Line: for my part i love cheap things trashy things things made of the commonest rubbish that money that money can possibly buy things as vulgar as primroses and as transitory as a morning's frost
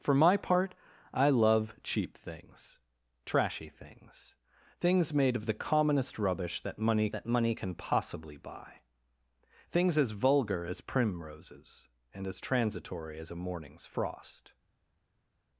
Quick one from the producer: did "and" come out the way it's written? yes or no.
yes